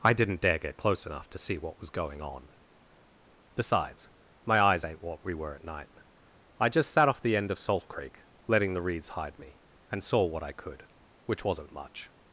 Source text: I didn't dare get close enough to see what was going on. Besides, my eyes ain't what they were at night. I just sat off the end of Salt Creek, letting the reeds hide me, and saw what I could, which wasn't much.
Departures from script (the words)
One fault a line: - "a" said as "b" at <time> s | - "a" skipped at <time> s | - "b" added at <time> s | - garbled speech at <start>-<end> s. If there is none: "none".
- "they" said as "we" at 5.2 s